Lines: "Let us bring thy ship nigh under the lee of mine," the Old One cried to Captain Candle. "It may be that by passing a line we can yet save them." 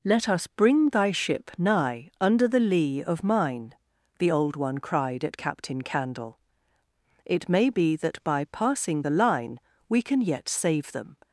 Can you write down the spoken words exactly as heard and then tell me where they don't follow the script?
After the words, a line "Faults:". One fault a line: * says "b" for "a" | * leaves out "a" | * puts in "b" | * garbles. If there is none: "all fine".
"Let us bring thy ship nigh under the lee of mine," the Old One cried at Captain Candle. "It may be that by passing the line we can yet save them."
Faults:
* says "at" for "to"
* says "the" for "a"